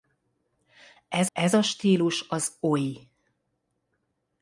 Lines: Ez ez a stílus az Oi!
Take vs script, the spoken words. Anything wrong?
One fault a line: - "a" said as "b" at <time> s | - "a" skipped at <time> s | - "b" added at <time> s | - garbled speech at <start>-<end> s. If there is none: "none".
none